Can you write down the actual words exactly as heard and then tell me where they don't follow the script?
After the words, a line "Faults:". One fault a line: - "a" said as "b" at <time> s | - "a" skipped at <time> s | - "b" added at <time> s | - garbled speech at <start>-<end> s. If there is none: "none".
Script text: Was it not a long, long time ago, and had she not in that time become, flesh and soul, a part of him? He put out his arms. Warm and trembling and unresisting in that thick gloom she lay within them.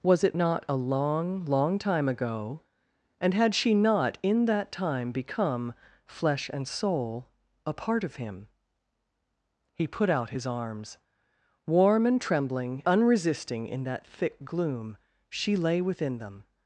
Was it not a long, long time ago, and had she not in that time become, flesh and soul, a part of him? He put out his arms. Warm and trembling unresisting in that thick gloom she lay within them.
Faults:
- "and" skipped at 12.8 s